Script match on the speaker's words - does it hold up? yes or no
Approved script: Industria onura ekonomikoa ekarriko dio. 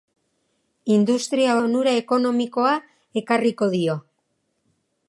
yes